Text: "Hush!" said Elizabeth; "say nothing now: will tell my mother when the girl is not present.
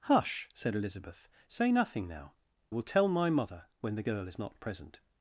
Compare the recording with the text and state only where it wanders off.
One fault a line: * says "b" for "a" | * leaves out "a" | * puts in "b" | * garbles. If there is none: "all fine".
all fine